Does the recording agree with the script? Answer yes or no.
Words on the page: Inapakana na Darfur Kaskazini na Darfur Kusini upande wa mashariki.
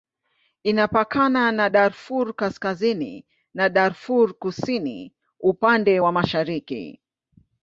yes